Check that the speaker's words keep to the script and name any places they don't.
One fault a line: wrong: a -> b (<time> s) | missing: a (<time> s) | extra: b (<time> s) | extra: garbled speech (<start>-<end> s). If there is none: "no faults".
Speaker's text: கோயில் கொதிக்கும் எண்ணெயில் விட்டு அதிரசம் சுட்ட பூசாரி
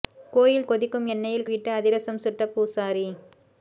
no faults